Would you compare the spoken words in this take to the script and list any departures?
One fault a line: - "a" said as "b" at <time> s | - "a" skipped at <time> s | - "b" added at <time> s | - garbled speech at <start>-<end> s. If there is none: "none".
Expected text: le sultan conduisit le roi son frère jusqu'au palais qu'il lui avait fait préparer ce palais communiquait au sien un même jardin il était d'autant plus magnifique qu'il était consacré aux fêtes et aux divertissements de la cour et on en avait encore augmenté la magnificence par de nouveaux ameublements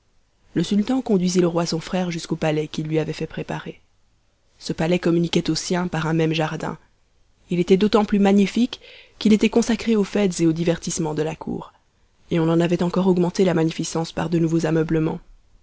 - "par" added at 5.9 s